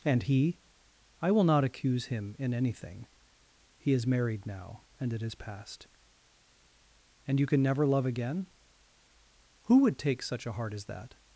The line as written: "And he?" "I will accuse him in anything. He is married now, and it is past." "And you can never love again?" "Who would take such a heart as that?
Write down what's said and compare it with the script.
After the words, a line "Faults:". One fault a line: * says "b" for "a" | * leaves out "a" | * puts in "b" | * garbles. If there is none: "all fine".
"And he?" "I will not accuse him in anything. He is married now, and it is past." "And you can never love again?" "Who would take such a heart as that?
Faults:
* puts in "not"